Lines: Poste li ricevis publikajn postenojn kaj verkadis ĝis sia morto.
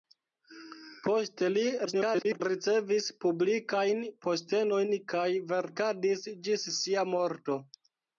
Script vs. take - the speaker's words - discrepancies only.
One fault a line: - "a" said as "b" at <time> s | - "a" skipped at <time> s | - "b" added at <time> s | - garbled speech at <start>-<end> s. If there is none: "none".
- garbled speech at 1.9-2.4 s